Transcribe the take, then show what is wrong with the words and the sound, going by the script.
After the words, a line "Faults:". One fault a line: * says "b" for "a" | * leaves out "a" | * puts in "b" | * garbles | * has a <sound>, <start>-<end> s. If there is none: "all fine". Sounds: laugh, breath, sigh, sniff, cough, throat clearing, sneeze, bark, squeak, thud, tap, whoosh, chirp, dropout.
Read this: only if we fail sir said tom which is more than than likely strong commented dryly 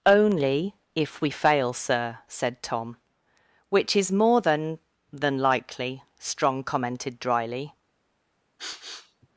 only if we fail sir said tom which is more than than likely strong commented dryly
Faults:
* has a sniff, 8.6-9.3 s